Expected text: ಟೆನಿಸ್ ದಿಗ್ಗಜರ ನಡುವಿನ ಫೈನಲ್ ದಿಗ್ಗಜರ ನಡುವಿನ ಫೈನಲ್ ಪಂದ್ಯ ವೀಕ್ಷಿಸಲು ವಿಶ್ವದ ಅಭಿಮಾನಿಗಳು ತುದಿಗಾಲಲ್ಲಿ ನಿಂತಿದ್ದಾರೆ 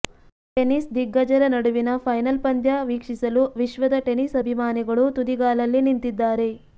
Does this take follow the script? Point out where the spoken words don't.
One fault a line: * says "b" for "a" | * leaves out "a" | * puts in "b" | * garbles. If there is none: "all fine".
* leaves out "ದಿಗ್ಗಜರ ನಡುವಿನ ಫೈನಲ್"
* puts in "ಟೆನಿಸ್"